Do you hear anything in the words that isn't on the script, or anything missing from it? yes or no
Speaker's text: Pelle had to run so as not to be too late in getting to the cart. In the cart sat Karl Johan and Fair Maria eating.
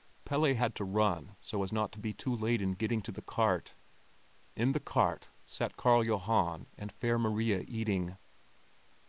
no